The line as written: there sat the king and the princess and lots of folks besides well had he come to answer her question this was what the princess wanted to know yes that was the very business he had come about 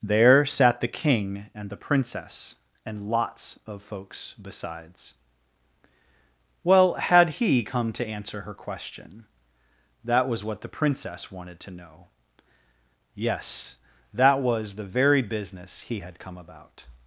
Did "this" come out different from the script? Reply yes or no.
yes